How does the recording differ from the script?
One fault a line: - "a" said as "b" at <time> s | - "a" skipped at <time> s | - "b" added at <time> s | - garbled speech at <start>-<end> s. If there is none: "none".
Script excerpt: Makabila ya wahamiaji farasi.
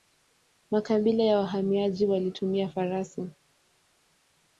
- "walitumia" added at 2.0 s